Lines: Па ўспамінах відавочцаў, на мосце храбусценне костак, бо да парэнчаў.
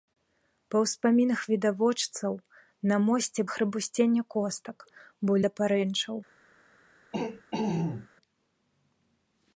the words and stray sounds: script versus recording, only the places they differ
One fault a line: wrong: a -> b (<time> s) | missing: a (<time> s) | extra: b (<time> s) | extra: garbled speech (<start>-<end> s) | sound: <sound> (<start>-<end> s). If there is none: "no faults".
sound: throat clearing (7.1-8.1 s)